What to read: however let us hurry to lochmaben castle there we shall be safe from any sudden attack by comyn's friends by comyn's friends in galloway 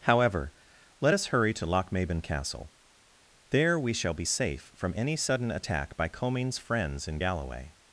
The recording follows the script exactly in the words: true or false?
false